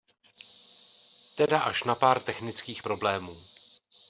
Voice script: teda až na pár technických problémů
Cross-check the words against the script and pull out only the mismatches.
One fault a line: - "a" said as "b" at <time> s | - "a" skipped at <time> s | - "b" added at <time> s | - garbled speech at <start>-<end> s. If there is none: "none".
none